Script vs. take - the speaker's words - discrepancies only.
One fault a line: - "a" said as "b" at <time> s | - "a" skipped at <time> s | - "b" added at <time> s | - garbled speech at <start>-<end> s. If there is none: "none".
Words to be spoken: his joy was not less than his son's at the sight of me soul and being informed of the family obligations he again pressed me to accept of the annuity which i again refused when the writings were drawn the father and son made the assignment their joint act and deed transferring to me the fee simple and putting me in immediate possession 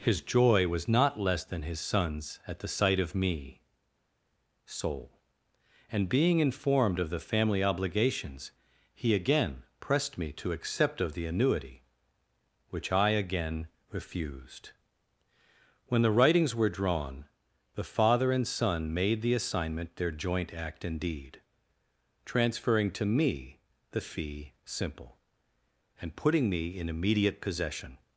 none